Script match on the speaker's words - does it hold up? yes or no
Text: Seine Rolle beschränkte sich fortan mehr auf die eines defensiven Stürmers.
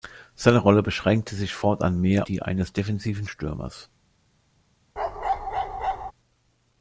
no